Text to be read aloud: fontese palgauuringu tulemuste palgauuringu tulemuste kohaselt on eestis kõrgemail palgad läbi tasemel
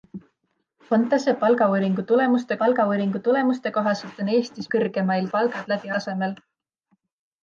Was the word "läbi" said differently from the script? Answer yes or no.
no